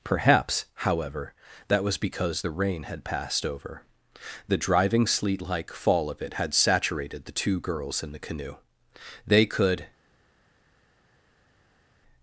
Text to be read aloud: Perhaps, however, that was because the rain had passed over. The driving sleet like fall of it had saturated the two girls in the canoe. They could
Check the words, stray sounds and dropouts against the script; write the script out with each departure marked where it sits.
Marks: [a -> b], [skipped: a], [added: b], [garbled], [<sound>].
Perhaps, however, that was because the rain had passed over. The driving sleet like fall of it had saturated the two girls in the canoe. They could